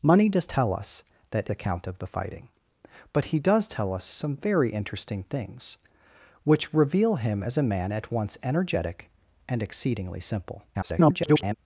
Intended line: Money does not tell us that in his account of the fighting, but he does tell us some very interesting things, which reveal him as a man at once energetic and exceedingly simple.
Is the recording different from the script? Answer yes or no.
yes